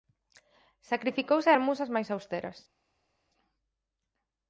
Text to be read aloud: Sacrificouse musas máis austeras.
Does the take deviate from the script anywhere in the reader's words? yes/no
yes